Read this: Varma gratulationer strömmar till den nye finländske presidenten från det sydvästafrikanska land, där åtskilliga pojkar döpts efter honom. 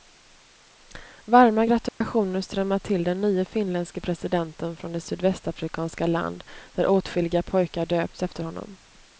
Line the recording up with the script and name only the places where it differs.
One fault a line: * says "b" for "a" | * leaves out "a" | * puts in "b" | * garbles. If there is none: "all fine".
all fine